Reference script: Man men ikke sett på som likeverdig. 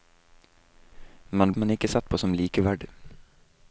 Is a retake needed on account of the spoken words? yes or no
no